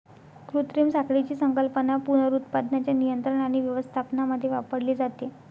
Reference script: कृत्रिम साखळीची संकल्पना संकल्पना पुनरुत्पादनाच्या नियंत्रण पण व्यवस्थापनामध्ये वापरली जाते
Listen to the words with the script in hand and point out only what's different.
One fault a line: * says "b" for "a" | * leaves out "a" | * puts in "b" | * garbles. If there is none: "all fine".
* leaves out "संकल्पना"
* says "आणि" for "पण"